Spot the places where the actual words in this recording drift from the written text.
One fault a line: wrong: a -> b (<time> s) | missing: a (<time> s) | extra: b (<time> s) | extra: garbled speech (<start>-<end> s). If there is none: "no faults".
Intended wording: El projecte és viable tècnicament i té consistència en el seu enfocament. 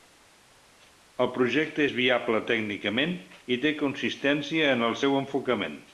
no faults